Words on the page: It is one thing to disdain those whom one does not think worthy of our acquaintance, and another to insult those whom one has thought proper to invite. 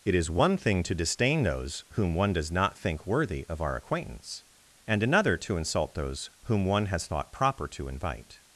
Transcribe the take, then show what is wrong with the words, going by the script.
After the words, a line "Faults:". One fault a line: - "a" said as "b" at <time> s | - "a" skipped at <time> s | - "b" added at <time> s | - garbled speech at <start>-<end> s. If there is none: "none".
It is one thing to disdain those whom one does not think worthy of our acquaintance, and another to insult those whom one has thought proper to invite.
Faults:
none